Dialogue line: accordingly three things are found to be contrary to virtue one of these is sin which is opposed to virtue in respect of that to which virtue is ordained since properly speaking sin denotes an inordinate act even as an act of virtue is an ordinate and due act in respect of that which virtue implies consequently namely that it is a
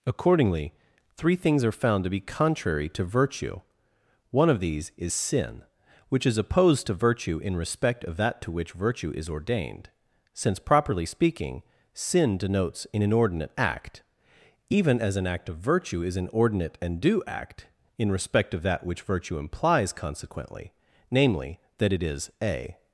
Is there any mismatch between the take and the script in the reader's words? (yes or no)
no